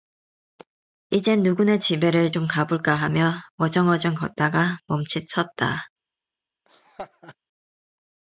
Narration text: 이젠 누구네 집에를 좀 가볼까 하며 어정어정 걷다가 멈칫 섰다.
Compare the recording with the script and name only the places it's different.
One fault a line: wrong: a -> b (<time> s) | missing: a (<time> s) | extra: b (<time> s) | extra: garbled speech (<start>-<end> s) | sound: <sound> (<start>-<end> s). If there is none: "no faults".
sound: laugh (6.7-7.4 s)